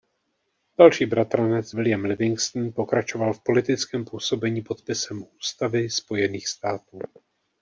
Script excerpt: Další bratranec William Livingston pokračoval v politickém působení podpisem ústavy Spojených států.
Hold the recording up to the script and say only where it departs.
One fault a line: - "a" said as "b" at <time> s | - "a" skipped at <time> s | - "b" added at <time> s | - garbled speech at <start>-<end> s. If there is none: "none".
none